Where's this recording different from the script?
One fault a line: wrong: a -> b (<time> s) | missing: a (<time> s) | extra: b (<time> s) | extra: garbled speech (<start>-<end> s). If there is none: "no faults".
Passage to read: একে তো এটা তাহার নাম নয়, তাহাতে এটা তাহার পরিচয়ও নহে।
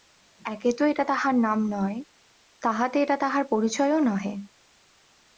no faults